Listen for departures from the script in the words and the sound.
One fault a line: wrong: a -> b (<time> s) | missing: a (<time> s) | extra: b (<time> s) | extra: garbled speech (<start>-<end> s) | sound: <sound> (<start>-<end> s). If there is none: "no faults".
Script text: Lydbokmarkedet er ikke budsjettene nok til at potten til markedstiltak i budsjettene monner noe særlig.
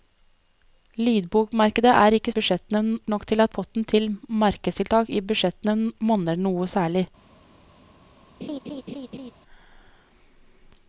sound: laugh (8.4-9.3 s)